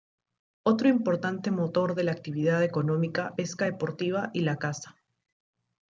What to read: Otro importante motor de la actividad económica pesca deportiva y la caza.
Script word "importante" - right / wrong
right